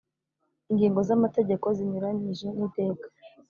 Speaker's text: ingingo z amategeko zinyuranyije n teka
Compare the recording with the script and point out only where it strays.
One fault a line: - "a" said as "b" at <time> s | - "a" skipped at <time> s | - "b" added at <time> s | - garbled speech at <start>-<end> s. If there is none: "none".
none